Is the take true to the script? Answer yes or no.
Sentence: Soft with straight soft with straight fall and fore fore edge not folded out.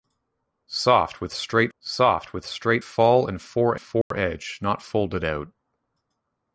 yes